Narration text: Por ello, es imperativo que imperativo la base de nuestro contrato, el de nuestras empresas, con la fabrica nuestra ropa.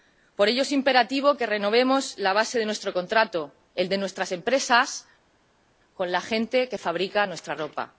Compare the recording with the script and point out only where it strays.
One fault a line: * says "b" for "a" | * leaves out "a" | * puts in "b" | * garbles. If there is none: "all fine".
* says "renovemos" for "imperativo"
* puts in "gente que"